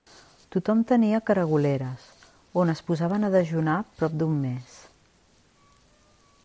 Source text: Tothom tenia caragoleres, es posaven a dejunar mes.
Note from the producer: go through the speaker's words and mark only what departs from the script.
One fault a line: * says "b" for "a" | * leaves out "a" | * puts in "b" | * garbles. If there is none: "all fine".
* puts in "on"
* puts in "prop d'un"